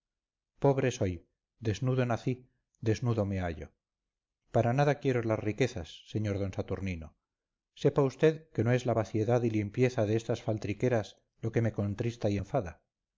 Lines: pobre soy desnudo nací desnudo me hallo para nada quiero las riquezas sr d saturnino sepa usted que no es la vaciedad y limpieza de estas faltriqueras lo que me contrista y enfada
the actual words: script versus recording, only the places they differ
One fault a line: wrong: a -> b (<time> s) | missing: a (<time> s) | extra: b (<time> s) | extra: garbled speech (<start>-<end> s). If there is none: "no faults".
no faults